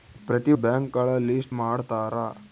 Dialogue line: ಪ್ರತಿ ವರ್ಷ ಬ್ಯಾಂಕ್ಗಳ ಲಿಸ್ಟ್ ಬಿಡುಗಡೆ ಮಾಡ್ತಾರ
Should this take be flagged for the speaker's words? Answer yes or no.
yes